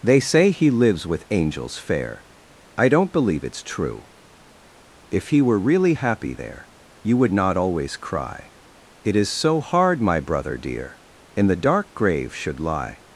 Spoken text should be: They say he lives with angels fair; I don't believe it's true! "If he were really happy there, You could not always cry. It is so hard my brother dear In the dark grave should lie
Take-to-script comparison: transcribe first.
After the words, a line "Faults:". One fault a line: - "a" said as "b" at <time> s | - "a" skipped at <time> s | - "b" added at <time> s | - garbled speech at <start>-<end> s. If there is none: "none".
They say he lives with angels fair; I don't believe it's true! "If he were really happy there, You would not always cry. It is so hard my brother dear In the dark grave should lie
Faults:
- "could" said as "would" at 7.2 s